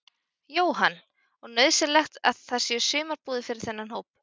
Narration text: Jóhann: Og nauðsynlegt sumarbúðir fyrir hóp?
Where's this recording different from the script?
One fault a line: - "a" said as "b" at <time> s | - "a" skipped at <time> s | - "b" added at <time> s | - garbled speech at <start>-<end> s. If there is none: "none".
- "að það séu" added at 2.3 s
- "þennan" added at 3.7 s